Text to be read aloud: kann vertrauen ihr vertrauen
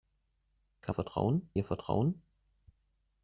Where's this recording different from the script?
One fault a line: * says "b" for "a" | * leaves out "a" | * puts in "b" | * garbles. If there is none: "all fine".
all fine